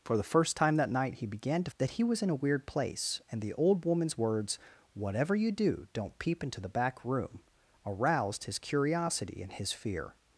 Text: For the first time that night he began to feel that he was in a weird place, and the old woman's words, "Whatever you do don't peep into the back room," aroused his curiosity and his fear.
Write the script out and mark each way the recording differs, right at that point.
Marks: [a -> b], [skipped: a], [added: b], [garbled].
For the first time that night he began to [skipped: feel] that he was in a weird place, and the old woman's words, "Whatever you do don't peep into the back room," aroused his curiosity and his fear.